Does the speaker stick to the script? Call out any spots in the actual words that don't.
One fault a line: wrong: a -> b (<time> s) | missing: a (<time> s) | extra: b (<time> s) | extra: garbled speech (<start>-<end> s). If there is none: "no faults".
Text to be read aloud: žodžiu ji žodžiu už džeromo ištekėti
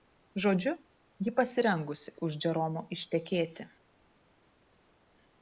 wrong: žodžiu -> pasirengusi (1.4 s)